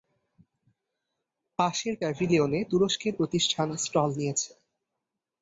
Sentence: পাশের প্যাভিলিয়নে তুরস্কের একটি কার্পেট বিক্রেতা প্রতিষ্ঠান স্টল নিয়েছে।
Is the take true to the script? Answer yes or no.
no